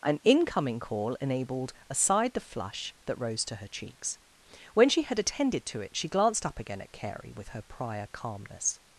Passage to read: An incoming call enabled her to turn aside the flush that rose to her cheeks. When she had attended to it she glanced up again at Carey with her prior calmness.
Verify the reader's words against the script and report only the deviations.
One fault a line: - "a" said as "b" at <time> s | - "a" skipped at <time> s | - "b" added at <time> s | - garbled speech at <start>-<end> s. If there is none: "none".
- "her to turn" skipped at 1.7 s